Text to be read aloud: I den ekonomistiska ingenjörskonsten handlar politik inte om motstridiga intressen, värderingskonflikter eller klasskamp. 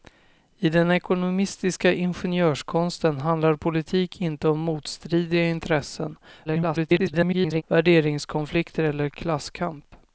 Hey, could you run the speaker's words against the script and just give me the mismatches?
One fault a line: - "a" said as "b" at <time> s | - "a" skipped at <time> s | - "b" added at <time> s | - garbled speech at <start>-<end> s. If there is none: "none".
- garbled speech at 6.4-7.6 s